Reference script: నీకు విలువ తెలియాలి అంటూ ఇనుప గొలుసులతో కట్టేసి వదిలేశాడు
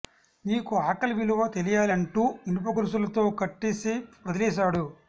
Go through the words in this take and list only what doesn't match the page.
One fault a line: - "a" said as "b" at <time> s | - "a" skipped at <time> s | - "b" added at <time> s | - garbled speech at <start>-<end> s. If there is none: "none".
- "ఆకలి" added at 0.8 s